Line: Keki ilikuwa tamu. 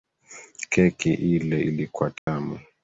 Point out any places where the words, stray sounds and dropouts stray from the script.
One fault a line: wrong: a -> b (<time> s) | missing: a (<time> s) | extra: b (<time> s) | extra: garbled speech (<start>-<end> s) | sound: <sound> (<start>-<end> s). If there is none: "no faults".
extra: ile (1.1 s)
sound: dropout (2.2-2.3 s)